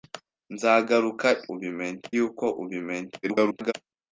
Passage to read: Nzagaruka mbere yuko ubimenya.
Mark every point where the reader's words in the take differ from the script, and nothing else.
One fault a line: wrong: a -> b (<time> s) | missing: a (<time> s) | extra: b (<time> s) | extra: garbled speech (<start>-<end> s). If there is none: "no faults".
wrong: mbere -> ubimenya (1.5 s)
extra: garbled speech (3.2-3.7 s)